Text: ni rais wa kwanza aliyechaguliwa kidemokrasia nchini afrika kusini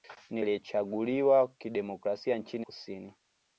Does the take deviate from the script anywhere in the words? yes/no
yes